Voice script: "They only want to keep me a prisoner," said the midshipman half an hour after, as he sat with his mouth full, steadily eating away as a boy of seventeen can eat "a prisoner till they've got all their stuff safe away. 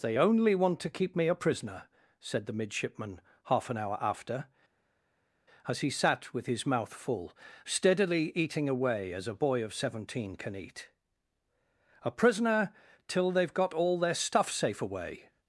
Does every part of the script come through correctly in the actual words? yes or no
yes